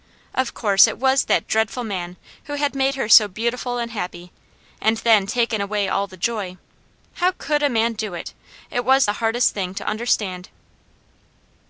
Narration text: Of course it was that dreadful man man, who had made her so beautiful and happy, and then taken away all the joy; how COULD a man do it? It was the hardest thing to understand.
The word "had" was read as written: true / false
true